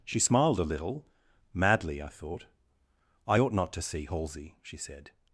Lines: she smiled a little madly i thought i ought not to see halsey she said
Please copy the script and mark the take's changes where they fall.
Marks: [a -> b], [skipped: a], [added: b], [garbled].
she smiled a little madly i thought i ought not to see halsey she said